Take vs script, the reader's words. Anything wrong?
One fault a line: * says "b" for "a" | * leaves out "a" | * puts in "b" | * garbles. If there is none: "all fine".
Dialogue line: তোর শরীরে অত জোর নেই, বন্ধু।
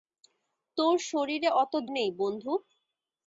* leaves out "জোর"